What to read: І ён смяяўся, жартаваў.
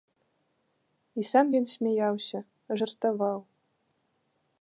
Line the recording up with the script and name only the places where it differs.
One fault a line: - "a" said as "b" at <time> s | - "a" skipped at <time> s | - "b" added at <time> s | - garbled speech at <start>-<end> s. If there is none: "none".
- "сам" added at 1.3 s